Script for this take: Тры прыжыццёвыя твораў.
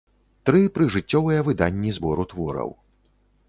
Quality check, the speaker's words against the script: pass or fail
fail